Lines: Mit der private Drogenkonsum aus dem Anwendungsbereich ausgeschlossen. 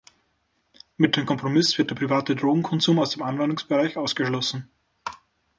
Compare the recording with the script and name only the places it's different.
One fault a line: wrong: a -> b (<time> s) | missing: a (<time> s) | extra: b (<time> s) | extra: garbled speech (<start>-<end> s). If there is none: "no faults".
extra: dem Kompromiss wird (1.1 s)